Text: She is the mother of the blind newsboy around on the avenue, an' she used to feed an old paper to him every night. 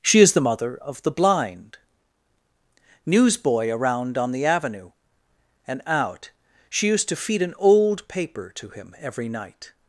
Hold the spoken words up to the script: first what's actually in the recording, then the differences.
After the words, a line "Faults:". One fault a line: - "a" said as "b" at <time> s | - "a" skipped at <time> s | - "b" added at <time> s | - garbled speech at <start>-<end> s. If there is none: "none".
She is the mother of the blind newsboy around on the avenue, and out' she used to feed an old paper to him every night.
Faults:
- "an" said as "and out" at 5.7 s